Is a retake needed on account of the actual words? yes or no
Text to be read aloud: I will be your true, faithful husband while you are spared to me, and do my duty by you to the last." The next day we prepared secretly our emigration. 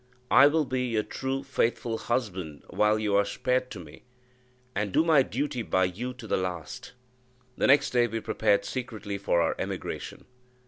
yes